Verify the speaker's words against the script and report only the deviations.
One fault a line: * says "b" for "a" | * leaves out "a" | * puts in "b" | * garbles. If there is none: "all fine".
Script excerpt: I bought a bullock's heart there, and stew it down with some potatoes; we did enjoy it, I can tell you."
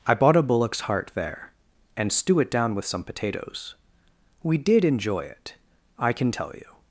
all fine